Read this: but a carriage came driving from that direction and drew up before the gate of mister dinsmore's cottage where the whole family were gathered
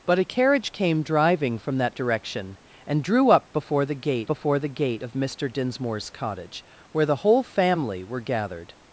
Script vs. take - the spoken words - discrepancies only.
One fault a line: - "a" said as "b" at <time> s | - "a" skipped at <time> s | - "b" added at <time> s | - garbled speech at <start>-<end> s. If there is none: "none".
- "before the gate" added at 4.3 s